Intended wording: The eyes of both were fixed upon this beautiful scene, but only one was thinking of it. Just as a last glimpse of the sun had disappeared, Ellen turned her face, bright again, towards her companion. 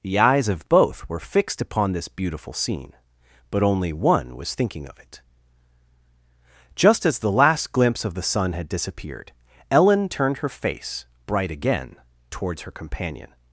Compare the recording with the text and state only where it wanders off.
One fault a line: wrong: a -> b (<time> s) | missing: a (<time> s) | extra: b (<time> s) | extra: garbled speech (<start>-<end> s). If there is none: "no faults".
wrong: a -> the (7.2 s)